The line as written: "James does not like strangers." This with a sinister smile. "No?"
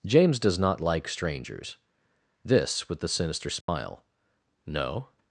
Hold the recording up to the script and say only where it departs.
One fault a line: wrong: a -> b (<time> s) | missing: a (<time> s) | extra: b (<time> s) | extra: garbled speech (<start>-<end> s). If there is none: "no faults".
wrong: a -> the (3.0 s)